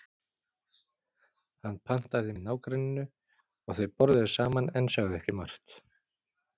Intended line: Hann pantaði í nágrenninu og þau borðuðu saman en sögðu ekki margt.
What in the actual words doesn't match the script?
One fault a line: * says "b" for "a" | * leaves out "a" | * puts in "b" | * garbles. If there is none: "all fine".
all fine